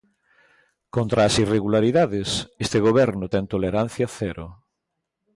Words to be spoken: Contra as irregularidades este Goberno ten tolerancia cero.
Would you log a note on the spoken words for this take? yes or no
no